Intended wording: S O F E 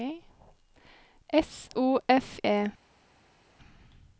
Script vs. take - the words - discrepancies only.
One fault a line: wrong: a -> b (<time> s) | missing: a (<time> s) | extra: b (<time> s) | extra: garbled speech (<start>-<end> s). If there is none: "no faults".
no faults